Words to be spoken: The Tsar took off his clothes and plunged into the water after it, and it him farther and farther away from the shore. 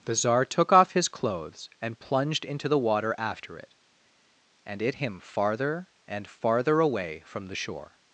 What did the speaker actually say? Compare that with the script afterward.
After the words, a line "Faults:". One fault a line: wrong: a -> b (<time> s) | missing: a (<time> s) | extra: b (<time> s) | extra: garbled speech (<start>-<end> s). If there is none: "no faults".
The Tsar took off his clothes and plunged into the water after it, and it him farther and farther away from the shore.
Faults:
no faults